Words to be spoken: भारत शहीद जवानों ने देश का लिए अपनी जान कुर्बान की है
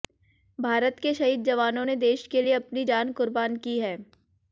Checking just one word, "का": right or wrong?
wrong